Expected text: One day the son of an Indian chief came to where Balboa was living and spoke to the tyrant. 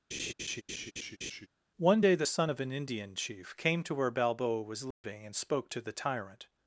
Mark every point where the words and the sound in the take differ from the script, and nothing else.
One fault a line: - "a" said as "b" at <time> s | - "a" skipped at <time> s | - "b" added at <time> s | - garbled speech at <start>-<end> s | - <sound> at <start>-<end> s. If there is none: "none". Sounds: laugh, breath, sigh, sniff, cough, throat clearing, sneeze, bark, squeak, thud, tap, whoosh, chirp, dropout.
- laugh at 0.1-1.5 s
- dropout at 4.9-5.0 s